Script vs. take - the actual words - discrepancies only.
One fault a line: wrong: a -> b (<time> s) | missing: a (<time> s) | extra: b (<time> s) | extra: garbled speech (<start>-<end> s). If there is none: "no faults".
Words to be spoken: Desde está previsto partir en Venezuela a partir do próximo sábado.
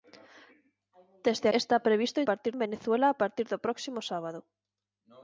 no faults